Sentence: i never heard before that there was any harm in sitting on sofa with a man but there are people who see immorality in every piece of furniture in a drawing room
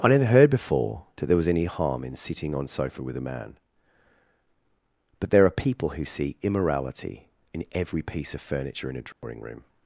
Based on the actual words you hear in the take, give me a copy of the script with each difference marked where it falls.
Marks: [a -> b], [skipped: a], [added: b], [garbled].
i never heard before that there was any harm in sitting on sofa with a man but there are people who see immorality in every piece of furniture in a drawing room